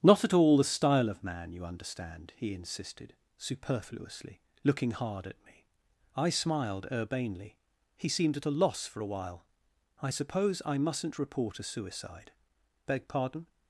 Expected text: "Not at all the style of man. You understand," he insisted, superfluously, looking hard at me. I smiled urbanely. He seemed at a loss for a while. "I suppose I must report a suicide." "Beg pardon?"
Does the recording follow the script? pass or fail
fail